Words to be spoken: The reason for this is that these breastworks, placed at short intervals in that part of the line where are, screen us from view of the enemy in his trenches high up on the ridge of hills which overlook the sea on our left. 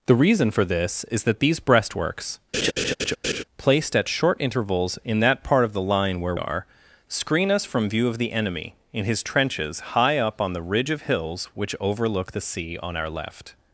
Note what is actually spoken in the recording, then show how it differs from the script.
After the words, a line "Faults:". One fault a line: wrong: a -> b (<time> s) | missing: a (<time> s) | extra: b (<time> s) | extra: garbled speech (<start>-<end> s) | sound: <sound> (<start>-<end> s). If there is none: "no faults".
The reason for this is that these breastworks, placed at short intervals in that part of the line where are, screen us from view of the enemy in his trenches high up on the ridge of hills which overlook the sea on our left.
Faults:
sound: laugh (2.5-3.4 s)